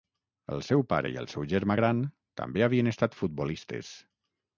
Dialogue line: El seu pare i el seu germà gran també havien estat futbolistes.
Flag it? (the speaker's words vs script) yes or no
no